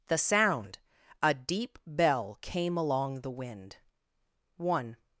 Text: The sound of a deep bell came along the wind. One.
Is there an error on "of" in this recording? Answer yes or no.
yes